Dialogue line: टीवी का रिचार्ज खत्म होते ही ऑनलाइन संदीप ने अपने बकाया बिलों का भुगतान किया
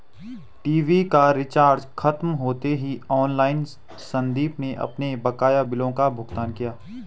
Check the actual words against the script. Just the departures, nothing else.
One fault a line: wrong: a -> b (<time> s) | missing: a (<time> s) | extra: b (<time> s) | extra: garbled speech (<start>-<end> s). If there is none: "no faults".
no faults